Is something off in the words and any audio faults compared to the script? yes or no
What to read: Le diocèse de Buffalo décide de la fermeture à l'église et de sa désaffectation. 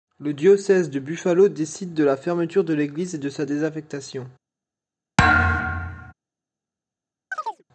yes